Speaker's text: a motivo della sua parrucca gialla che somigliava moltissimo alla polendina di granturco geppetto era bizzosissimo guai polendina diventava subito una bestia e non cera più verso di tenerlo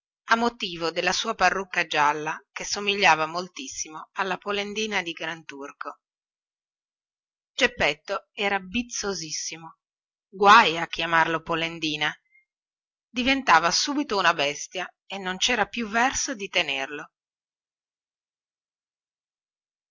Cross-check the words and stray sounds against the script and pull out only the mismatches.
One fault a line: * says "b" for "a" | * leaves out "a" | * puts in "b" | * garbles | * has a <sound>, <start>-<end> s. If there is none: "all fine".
* puts in "a chiamarlo"